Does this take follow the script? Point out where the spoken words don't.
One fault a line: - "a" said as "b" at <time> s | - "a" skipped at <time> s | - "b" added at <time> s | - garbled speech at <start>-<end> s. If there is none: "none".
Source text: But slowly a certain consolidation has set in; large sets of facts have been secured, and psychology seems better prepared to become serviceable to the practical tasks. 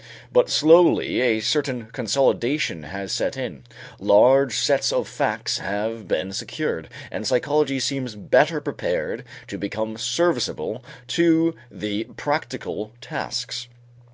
none